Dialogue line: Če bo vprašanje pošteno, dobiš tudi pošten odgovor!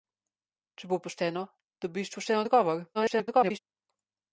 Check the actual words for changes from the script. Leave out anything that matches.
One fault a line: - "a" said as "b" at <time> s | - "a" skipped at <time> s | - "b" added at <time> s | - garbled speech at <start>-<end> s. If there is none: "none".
- "vprašanje" skipped at 1.0 s
- "tudi" skipped at 2.1 s
- garbled speech at 2.9-3.6 s